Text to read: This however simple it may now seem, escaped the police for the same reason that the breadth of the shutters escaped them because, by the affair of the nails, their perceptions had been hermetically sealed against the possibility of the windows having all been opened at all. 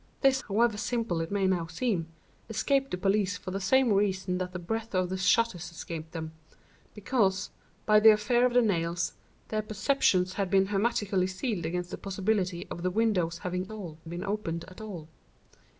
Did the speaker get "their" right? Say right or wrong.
right